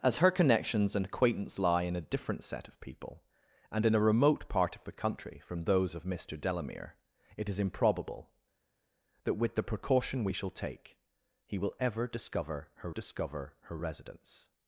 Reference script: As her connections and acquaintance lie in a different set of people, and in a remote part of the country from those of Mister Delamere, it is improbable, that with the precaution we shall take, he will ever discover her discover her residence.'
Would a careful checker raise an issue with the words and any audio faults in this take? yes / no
no